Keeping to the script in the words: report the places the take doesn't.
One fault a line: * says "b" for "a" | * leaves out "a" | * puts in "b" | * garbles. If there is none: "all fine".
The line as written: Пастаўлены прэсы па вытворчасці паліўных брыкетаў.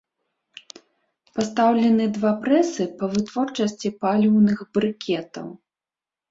* puts in "два"